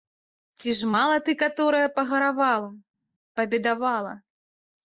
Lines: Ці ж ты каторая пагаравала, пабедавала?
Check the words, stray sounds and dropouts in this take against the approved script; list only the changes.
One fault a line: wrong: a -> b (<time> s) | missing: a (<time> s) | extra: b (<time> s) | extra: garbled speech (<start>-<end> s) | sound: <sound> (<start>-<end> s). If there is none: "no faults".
extra: мала (0.9 s)